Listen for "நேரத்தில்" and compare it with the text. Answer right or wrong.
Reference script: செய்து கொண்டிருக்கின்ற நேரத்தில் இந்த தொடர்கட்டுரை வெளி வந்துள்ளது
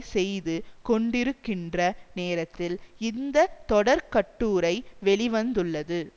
right